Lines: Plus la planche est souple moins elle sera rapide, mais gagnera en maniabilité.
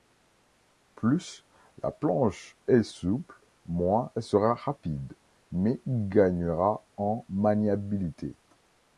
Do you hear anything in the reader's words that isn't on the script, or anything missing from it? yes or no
no